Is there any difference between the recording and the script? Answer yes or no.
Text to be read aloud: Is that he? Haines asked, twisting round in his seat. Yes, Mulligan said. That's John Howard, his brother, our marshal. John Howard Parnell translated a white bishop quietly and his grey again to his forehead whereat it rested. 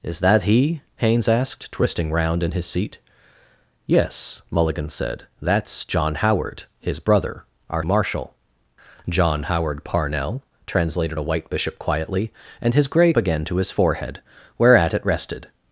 no